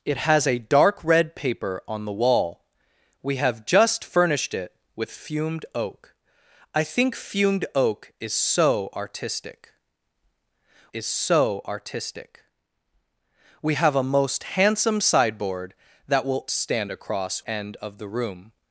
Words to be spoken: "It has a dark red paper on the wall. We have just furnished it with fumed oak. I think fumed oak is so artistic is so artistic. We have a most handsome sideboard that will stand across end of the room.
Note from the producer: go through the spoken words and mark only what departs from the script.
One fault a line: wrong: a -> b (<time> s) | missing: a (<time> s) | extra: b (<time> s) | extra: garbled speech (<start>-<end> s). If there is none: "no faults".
no faults